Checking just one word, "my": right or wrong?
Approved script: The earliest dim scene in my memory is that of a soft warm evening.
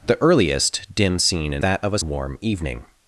wrong